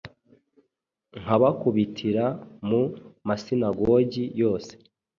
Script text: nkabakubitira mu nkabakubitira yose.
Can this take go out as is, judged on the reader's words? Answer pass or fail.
fail